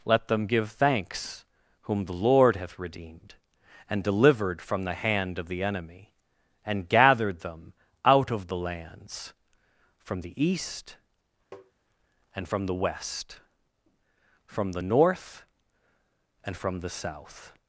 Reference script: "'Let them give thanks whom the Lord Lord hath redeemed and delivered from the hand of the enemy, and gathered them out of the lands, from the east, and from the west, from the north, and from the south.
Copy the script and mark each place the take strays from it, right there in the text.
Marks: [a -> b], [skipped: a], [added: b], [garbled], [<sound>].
"'Let them give thanks whom the Lord [skipped: Lord] hath redeemed and delivered from the hand of the enemy, and gathered them out of the lands, from the east, [tap] and from the west, from the north, and from the south.